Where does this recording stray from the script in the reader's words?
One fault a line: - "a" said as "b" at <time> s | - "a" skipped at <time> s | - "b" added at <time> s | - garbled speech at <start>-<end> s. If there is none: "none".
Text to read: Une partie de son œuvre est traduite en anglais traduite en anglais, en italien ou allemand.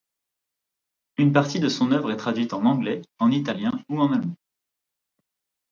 - "traduite" skipped at 3.0 s
- "anglais en" skipped at 3.3 s
- "en" added at 4.0 s